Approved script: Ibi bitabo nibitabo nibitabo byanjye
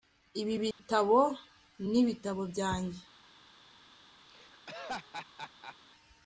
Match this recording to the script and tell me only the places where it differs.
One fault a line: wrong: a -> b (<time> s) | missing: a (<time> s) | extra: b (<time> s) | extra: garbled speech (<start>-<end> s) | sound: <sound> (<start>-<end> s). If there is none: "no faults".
sound: dropout (0.7-0.8 s)
missing: nibitabo (2.4 s)
sound: laugh (4.3-5.8 s)